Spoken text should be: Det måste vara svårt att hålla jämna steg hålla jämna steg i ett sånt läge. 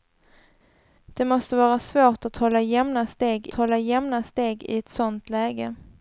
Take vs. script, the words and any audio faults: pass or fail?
pass